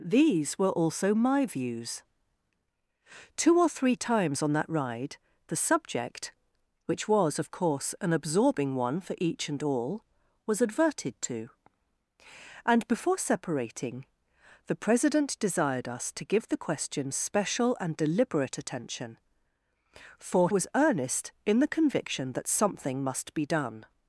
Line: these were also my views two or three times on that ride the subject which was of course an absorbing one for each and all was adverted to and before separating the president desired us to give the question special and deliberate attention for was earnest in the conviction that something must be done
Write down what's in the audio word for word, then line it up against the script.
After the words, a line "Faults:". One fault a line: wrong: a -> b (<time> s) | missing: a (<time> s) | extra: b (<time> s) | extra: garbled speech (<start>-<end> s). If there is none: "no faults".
these were also my views two or three times on that ride the subject which was of course an absorbing one for each and all was adverted to and before separating the president desired us to give the question special and deliberate attention for was earnest in the conviction that something must be done
Faults:
no faults